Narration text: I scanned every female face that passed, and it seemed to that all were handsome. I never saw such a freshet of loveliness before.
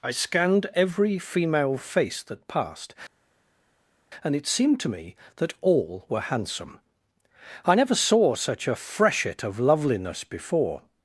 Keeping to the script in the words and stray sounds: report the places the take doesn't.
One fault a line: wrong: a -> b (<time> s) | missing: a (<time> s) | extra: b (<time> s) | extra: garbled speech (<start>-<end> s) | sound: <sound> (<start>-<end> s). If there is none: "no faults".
extra: me (4.9 s)